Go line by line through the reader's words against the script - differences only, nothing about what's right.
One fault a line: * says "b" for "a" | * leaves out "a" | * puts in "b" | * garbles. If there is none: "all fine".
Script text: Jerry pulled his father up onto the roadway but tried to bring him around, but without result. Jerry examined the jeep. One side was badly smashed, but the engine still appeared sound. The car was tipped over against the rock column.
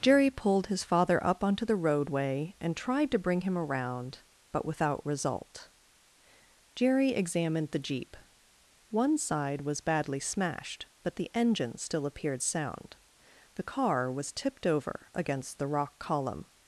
* says "and" for "but"